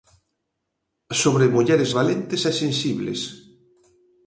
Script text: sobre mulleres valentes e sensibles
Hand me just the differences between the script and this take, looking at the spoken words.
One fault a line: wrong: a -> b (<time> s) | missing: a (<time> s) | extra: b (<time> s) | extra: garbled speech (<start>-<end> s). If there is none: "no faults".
no faults